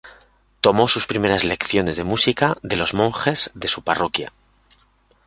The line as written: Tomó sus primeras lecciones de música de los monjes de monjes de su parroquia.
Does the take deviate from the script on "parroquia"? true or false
false